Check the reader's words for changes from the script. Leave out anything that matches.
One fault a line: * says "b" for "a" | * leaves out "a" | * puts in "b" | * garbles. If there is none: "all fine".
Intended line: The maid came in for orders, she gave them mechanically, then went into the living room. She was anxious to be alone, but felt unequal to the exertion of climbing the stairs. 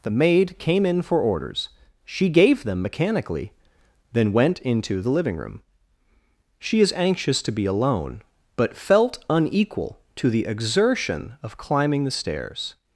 * says "is" for "was"